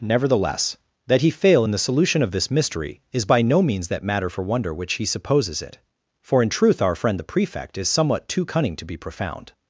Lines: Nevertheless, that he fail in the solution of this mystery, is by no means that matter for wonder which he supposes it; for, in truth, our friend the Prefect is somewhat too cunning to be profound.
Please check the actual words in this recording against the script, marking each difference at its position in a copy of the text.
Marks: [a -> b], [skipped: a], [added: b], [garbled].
Nevertheless, that he fail in the solution of this mystery, is by no means that matter for wonder which he supposes it; for, in truth, our friend the Prefect is somewhat too cunning to be profound.